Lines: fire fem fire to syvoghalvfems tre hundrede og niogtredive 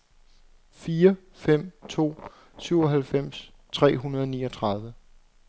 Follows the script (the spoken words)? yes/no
no